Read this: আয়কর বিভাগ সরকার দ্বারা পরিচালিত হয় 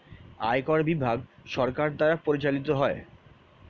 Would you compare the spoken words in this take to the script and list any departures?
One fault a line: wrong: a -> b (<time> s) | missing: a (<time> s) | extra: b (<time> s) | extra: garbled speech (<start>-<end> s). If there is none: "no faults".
no faults